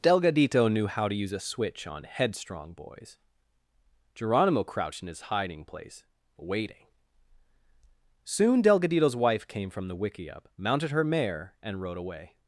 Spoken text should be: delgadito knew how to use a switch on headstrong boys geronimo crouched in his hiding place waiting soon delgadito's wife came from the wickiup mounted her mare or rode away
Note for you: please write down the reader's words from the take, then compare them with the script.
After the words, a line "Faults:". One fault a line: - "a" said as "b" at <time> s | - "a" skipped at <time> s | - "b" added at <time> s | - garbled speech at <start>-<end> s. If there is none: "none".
delgadito knew how to use a switch on headstrong boys geronimo crouched in his hiding place waiting soon delgadito's wife came from the wickiup mounted her mare and rode away
Faults:
- "or" said as "and" at 11.6 s